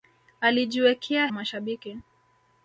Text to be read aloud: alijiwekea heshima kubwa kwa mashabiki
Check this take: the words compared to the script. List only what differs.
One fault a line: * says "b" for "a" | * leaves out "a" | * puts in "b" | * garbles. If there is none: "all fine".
* leaves out "heshima kubwa kwa"